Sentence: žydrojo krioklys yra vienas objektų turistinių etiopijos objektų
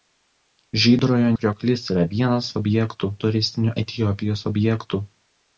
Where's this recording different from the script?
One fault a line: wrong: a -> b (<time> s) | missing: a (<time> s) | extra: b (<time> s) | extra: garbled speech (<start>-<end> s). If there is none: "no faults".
no faults